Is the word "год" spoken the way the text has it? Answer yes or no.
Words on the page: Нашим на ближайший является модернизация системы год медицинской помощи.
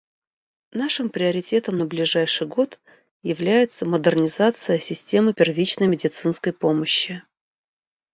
no